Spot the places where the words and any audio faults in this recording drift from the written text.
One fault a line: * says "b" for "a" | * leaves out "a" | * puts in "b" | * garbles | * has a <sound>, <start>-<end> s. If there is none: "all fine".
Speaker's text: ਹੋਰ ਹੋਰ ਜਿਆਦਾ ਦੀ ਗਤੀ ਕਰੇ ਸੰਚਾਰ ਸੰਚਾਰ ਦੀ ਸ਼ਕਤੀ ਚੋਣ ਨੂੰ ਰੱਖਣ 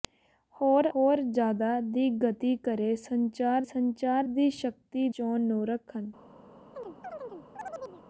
* has a chirp, 6.7-8.0 s